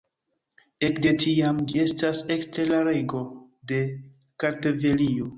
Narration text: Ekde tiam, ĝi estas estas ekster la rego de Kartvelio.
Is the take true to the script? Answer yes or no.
no